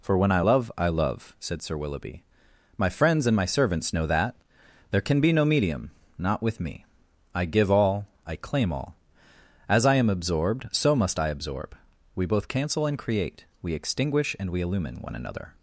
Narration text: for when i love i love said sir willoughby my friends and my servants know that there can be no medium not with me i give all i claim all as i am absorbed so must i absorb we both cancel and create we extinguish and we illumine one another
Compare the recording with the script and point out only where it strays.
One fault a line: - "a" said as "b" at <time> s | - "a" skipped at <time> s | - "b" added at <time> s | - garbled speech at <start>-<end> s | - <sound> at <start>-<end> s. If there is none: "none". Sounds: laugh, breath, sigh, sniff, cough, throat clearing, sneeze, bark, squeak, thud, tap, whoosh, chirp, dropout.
none